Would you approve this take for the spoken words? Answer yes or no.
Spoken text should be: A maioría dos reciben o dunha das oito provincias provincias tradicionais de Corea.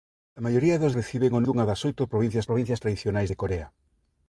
yes